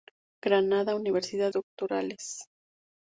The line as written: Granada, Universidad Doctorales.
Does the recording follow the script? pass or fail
pass